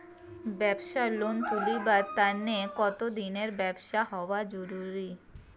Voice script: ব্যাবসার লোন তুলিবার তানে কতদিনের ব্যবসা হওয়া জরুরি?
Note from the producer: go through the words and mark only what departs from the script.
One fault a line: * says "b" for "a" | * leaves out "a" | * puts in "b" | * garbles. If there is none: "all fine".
all fine